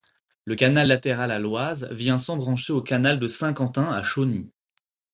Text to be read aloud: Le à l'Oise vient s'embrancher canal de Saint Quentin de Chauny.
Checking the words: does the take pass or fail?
fail